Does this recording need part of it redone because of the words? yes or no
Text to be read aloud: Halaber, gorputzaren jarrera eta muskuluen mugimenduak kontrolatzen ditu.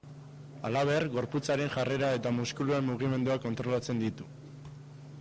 no